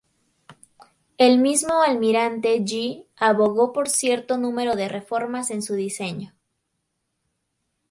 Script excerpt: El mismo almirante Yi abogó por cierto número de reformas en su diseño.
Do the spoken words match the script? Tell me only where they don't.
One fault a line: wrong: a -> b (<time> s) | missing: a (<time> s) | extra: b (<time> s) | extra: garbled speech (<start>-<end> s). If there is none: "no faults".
no faults